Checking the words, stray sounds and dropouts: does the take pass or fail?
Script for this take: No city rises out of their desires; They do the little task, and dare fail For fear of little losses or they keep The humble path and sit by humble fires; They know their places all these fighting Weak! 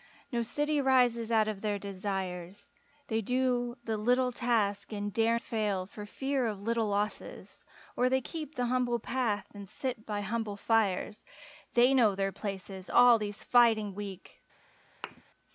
fail